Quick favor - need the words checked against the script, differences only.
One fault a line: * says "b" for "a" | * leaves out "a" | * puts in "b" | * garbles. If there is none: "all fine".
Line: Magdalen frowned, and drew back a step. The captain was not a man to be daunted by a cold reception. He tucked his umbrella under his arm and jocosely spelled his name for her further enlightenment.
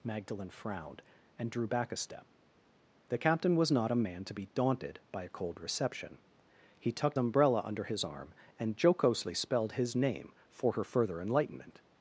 * leaves out "his"